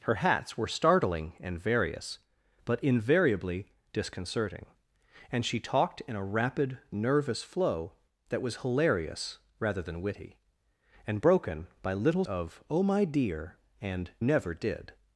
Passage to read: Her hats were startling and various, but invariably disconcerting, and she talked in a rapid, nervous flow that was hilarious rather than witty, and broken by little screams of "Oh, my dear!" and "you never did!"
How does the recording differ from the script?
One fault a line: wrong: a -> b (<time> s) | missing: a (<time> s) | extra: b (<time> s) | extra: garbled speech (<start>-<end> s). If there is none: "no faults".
missing: screams (12.2 s)
missing: you (14.1 s)